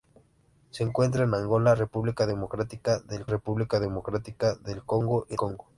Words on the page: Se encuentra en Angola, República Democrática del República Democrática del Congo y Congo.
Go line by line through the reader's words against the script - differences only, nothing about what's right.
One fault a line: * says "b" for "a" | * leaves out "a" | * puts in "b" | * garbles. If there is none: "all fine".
all fine